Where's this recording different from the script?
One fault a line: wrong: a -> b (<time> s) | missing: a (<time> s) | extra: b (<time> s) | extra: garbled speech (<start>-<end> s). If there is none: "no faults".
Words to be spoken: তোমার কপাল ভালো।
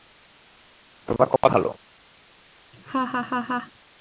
no faults